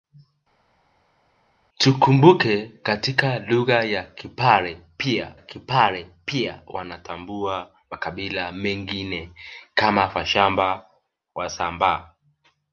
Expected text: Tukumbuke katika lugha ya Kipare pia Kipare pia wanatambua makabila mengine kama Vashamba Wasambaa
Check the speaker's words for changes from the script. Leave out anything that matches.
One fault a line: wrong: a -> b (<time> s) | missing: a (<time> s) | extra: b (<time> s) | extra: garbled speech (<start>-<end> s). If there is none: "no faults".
no faults